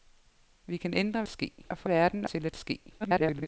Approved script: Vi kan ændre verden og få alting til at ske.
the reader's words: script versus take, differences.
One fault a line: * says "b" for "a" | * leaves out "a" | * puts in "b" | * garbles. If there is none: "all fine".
* says "ske" for "verden"
* says "verden" for "alting"
* garbles